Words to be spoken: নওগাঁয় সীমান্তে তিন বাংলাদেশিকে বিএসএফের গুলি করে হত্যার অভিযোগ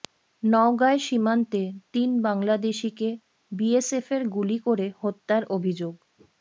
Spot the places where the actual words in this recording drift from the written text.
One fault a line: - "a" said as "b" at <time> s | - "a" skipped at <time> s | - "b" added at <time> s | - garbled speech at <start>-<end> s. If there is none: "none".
none